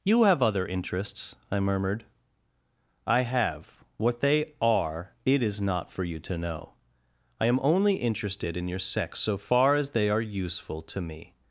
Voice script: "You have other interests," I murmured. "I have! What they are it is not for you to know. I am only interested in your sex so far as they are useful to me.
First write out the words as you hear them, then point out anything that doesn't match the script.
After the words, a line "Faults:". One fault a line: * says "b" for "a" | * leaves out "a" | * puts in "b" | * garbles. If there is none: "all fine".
"You have other interests," I murmured. "I have! What they are it is not for you to know. I am only interested in your sex so far as they are useful to me.
Faults:
all fine